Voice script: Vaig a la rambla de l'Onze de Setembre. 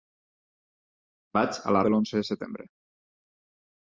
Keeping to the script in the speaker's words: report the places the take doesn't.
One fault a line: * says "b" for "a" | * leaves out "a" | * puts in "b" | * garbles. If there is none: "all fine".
* leaves out "rambla"